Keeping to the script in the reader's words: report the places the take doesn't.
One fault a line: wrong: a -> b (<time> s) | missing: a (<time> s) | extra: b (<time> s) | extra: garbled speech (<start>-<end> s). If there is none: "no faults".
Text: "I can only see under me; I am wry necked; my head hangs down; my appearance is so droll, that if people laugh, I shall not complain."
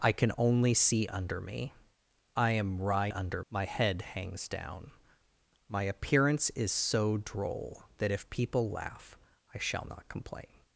wrong: necked -> under (3.1 s)